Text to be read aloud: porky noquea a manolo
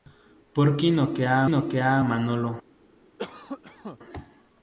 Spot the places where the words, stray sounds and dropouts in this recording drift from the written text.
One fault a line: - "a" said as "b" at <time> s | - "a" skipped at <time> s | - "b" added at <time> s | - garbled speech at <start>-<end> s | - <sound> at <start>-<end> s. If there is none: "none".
- "noquea" added at 1.4 s
- cough at 3.2-4.0 s